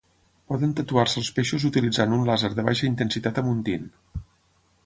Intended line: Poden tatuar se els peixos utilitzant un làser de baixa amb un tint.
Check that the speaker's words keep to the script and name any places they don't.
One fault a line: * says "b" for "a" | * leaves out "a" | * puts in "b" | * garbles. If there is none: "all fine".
* puts in "intensitat"